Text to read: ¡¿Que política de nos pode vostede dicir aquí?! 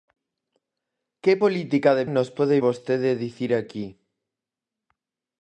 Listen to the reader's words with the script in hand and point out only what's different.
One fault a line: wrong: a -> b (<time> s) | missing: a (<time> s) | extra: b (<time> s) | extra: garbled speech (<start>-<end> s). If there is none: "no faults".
no faults